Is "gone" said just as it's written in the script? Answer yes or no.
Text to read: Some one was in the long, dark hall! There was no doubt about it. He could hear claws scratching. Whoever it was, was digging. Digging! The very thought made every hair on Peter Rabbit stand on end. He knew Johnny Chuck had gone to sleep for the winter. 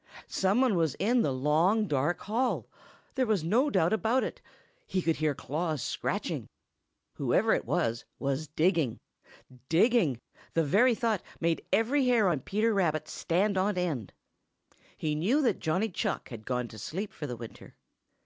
yes